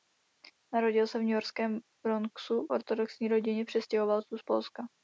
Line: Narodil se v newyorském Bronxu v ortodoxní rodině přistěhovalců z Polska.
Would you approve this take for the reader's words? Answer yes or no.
no